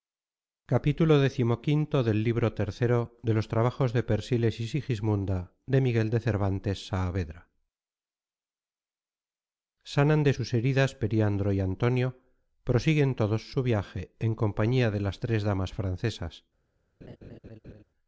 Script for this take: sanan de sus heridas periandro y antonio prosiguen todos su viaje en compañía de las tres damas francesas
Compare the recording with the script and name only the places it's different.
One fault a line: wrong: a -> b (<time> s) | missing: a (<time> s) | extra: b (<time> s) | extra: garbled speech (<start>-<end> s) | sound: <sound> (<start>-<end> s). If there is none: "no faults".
sound: laugh (17.0-17.8 s)